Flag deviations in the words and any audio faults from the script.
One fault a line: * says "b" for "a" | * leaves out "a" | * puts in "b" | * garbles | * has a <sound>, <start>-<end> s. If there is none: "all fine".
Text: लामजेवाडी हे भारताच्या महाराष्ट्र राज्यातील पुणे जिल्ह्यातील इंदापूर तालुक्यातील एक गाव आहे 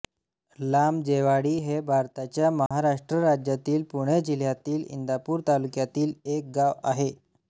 * has a dropout, 2.7-2.7 s